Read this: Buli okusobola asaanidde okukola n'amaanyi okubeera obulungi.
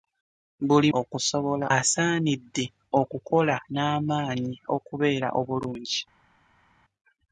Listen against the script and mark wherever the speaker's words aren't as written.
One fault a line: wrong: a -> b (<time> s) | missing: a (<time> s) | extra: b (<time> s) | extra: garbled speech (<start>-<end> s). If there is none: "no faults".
no faults